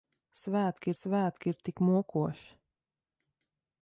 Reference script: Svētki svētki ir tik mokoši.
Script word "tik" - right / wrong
right